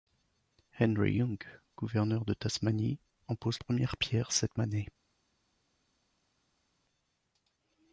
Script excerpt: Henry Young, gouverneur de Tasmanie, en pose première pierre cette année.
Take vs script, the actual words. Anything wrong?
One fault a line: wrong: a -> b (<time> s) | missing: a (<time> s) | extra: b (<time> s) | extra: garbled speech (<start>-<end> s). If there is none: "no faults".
no faults